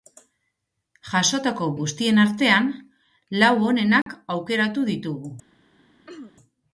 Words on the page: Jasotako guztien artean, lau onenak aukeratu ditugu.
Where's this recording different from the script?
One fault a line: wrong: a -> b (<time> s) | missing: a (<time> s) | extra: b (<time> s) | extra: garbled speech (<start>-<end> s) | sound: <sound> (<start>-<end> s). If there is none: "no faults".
sound: dropout (4.0-4.1 s)
sound: throat clearing (6.1-6.3 s)